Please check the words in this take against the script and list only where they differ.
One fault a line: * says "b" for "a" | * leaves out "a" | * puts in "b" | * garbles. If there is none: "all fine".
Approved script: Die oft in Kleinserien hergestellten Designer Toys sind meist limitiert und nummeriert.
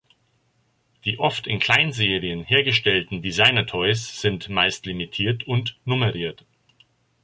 all fine